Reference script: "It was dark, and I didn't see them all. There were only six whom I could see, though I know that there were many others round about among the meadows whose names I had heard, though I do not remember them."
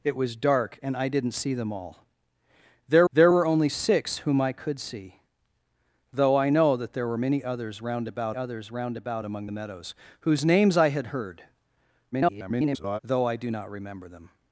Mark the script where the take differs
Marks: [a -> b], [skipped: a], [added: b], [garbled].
"It was dark, and I didn't see them all. There [added: there] were only six whom I could see, though I know that there were many others round about [added: others round about] among the meadows whose names I had heard, [garbled] though I do not remember them."